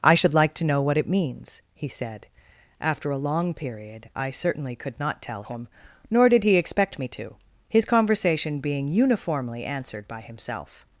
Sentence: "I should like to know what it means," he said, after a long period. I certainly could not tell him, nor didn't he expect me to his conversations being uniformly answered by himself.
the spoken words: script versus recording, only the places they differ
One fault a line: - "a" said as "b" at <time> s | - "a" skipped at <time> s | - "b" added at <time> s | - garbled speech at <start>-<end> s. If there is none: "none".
- "didn't" said as "did" at 6.3 s
- "conversations" said as "conversation" at 7.8 s